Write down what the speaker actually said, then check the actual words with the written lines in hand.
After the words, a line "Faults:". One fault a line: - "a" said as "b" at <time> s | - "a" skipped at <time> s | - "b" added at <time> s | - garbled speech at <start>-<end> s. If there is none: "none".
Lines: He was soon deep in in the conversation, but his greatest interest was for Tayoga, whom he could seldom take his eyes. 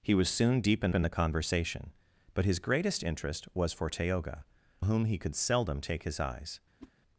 He was soon deep in in the conversation, but his greatest interest was for Tayoga, whom he could seldom take his eyes.
Faults:
none